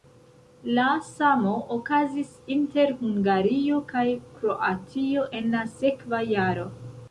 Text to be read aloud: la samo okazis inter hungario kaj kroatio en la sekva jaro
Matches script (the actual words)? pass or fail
pass